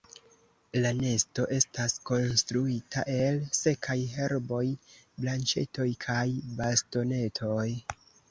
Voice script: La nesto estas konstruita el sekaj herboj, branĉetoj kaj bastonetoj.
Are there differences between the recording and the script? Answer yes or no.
no